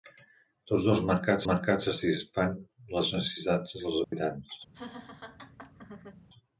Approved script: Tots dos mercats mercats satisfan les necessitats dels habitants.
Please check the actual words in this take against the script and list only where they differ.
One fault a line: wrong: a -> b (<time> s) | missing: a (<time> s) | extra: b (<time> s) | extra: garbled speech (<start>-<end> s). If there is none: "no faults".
no faults